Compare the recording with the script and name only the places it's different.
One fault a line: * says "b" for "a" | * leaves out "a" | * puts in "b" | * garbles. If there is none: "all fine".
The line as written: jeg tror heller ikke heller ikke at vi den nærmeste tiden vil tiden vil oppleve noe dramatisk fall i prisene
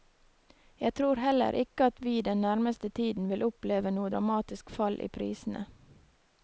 * leaves out "heller ikke"
* leaves out "tiden vil"